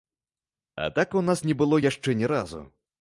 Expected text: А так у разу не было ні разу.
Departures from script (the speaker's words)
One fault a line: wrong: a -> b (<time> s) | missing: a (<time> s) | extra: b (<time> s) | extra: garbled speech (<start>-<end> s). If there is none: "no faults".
wrong: разу -> нас (1.2 s)
extra: яшчэ (1.9 s)